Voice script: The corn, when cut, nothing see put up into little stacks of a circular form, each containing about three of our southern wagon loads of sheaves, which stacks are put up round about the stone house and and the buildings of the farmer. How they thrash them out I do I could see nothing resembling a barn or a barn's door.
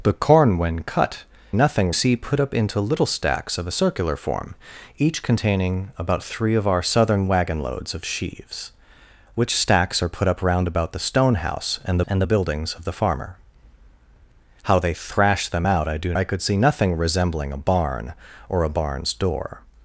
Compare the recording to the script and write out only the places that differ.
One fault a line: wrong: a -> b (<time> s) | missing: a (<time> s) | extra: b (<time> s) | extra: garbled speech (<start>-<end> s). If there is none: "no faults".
no faults